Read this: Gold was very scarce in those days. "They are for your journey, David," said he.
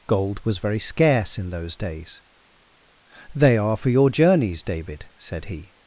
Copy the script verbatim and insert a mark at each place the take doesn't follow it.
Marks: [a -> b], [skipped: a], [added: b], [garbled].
Gold was very scarce in those days. "They are for your [journey, -> journeys] David," said he.